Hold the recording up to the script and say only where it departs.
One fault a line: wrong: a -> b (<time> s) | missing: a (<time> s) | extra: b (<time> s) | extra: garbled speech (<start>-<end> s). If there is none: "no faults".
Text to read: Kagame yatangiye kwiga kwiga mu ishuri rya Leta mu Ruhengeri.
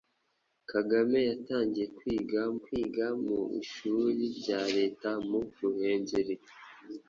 no faults